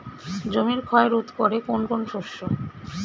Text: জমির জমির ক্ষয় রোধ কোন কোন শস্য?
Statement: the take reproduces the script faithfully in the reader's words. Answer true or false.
false